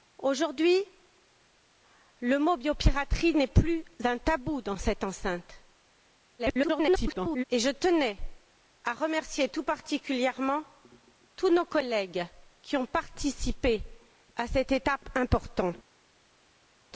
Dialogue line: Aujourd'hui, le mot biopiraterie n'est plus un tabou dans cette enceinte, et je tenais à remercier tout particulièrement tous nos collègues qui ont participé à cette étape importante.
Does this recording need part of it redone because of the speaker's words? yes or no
yes